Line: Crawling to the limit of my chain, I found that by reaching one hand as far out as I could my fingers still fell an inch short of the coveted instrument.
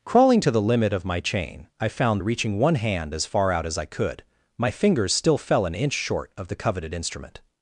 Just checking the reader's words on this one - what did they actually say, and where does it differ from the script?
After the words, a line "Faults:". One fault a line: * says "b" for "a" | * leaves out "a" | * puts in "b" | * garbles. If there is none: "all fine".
Crawling to the limit of my chain, I found reaching one hand as far out as I could my fingers still fell an inch short of the coveted instrument.
Faults:
* leaves out "that by"